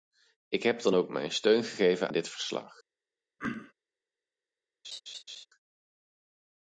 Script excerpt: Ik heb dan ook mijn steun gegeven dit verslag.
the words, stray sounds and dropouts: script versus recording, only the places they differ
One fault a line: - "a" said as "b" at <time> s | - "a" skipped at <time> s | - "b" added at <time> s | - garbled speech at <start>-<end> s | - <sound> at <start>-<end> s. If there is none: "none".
- throat clearing at 3.4-3.7 s
- laugh at 4.8-5.5 s